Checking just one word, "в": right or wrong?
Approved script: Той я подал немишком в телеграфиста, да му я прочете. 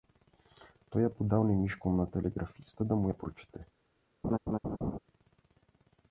wrong